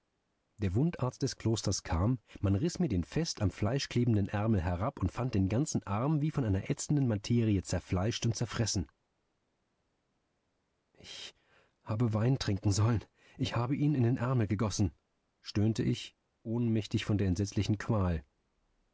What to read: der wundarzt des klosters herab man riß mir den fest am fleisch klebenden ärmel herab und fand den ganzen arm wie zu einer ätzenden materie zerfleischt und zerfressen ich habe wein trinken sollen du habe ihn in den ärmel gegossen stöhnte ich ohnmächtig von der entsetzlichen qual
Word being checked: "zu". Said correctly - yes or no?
no